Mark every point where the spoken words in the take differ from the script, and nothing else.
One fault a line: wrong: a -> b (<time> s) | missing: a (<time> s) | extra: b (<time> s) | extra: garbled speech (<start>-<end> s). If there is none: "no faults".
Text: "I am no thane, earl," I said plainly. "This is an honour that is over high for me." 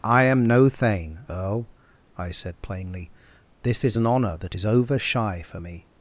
wrong: high -> shy (5.0 s)